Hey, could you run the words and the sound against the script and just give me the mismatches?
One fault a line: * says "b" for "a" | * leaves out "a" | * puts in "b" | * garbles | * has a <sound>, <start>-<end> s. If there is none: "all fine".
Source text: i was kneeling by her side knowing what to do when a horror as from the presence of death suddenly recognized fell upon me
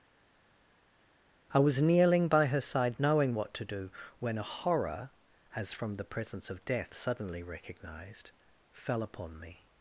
all fine